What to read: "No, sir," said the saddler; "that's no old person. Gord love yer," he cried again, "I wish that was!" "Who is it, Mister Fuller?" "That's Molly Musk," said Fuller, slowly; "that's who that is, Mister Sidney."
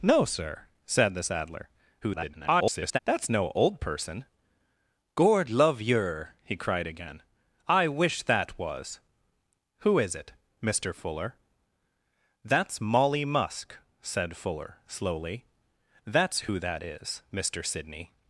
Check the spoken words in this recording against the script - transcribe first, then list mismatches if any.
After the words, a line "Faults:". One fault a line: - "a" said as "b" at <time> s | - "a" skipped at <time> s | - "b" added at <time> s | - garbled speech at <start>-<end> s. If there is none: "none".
"No, sir," said the saddler; [garbled] "that's no old person. Gord love yer," he cried again, "I wish that was!" "Who is it, Mister Fuller?" "That's Molly Musk," said Fuller, slowly; "that's who that is, Mister Sidney."
Faults:
- garbled speech at 2.0-3.0 s